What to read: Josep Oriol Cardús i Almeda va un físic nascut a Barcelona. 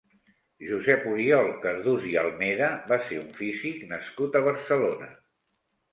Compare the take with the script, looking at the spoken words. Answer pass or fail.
fail